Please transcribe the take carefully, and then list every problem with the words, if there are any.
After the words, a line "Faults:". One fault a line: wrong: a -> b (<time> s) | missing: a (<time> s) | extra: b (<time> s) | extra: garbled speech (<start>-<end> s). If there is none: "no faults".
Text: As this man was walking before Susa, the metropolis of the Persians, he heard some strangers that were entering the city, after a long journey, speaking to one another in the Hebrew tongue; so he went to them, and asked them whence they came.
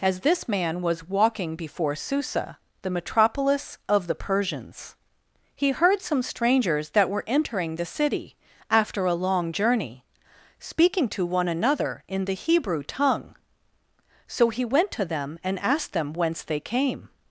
As this man was walking before Susa, the metropolis of the Persians, he heard some strangers that were entering the city, after a long journey, speaking to one another in the Hebrew tongue; so he went to them, and asked them whence they came.
Faults:
no faults